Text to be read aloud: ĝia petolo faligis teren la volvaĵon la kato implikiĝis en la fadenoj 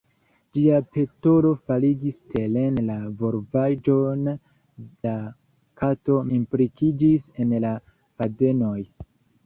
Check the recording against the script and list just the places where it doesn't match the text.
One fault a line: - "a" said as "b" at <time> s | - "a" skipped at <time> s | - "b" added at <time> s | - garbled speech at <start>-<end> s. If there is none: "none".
none